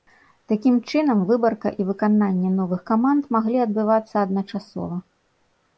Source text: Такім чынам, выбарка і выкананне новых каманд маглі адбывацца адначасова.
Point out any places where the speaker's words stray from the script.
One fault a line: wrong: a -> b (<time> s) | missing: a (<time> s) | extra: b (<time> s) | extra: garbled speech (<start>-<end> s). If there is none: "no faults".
no faults